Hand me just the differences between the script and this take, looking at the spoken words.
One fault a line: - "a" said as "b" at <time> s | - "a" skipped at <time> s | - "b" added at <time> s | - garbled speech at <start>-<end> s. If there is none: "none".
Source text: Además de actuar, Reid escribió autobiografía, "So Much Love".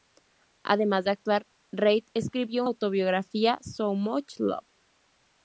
none